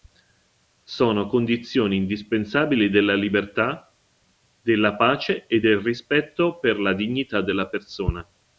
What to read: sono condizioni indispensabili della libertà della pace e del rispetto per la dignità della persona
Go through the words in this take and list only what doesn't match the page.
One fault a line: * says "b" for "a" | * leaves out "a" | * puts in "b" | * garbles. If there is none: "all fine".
all fine